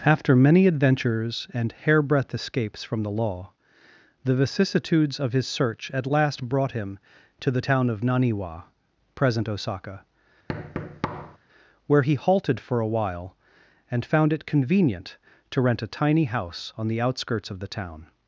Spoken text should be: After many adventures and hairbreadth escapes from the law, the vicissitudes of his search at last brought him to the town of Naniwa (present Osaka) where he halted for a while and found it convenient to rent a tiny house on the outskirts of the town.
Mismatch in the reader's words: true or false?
false